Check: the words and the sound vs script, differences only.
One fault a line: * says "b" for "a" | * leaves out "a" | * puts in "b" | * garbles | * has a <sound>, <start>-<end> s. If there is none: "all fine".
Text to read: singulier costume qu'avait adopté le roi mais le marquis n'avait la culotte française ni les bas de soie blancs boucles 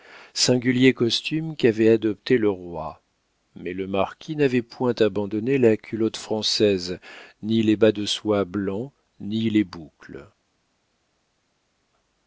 * puts in "point abandonné"
* puts in "ni les"